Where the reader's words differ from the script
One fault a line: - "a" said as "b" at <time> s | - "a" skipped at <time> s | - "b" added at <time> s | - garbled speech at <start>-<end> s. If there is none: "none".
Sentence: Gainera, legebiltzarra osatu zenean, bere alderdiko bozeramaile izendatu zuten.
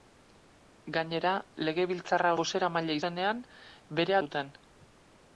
- "osatu" said as "bozeramaile" at 2.4 s
- "alderdiko bozeramaile izendatu" skipped at 4.2 s